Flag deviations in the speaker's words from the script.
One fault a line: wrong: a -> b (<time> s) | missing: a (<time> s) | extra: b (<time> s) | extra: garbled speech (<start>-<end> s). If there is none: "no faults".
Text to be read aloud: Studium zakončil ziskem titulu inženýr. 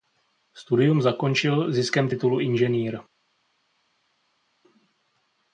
no faults